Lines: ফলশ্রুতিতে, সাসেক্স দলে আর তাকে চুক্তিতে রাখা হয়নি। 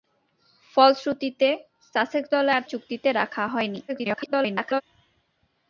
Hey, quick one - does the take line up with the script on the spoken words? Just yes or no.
no